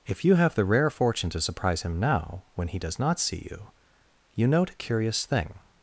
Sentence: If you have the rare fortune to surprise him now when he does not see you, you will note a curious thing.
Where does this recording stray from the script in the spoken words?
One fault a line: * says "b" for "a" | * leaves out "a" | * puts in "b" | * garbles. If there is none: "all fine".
* leaves out "will"